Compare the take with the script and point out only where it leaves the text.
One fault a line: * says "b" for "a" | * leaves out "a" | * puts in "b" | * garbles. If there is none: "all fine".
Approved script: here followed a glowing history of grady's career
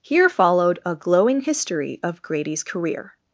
all fine